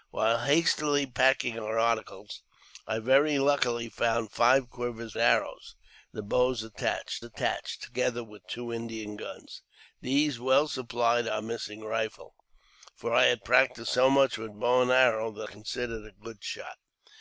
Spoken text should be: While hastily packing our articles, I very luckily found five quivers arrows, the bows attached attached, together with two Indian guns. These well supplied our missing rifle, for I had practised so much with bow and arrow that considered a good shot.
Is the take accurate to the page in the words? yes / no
yes